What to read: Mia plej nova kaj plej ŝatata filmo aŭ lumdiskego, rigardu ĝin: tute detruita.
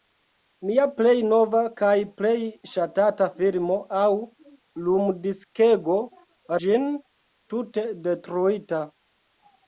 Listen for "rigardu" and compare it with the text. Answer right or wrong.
wrong